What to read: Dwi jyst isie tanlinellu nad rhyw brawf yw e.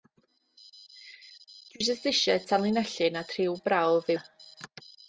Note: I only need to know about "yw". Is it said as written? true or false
false